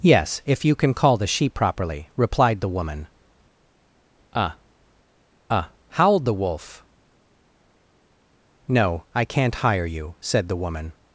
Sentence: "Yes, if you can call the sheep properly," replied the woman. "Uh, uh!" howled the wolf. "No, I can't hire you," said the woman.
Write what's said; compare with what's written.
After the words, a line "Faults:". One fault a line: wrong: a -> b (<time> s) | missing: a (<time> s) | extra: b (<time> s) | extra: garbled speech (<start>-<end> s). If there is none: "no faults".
"Yes, if you can call the sheep properly," replied the woman. "Uh, uh!" howled the wolf. "No, I can't hire you," said the woman.
Faults:
no faults